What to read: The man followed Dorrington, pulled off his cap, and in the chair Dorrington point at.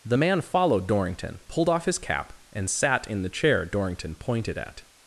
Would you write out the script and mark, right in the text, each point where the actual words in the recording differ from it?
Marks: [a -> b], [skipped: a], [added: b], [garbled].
The man followed Dorrington, pulled off his cap, and [added: sat] in the chair Dorrington [point -> pointed] at.